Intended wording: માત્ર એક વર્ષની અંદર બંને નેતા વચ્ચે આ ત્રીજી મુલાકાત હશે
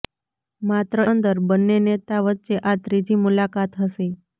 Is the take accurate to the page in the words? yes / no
no